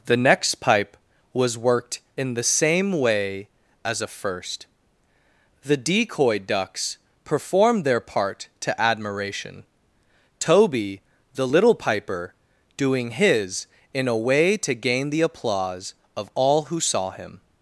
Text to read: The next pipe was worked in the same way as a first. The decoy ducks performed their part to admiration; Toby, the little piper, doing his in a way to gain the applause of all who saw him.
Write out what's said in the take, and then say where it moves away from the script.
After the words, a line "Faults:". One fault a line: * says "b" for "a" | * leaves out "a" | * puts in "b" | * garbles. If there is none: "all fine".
The next pipe was worked in the same way as a first. The decoy ducks performed their part to admiration; Toby, the little piper, doing his in a way to gain the applause of all who saw him.
Faults:
all fine